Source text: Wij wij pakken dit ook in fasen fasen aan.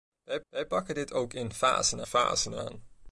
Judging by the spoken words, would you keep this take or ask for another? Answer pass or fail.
pass